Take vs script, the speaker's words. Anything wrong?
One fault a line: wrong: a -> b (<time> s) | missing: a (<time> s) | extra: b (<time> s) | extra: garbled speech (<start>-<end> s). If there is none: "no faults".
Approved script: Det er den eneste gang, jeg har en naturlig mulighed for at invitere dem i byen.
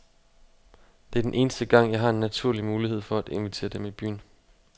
no faults